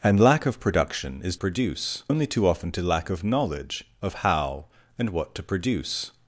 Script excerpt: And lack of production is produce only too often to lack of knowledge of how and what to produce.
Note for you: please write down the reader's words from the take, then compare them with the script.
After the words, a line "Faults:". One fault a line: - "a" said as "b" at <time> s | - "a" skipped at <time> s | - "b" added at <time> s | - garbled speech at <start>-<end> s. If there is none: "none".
And lack of production is produce only too often to lack of knowledge of how and what to produce.
Faults:
none